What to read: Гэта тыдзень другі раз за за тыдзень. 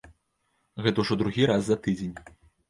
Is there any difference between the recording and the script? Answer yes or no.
yes